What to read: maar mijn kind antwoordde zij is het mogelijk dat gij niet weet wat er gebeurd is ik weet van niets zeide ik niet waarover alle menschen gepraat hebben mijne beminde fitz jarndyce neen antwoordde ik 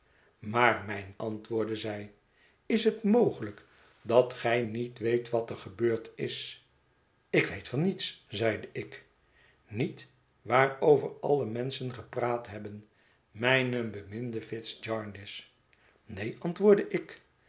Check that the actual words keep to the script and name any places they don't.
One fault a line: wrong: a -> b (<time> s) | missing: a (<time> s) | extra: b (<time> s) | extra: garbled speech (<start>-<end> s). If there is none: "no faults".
missing: kind (1.1 s)